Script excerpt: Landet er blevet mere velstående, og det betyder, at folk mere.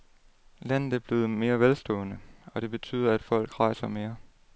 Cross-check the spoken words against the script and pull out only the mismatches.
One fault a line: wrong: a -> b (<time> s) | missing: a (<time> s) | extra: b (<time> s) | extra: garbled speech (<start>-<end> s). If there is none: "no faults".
extra: rejser (3.6 s)